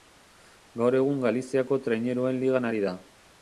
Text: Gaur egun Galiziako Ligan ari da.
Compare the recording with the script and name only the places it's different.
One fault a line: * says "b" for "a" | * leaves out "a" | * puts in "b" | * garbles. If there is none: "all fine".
* puts in "Traineruen"